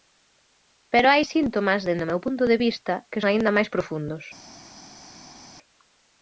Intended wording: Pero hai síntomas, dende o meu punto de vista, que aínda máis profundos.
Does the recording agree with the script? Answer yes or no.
yes